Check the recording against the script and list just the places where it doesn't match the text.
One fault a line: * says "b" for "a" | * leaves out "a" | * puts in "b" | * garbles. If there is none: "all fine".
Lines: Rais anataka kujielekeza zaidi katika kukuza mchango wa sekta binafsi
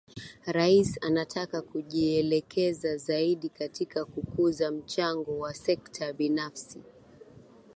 all fine